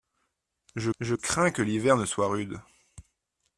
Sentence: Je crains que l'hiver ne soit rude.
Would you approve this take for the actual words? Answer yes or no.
no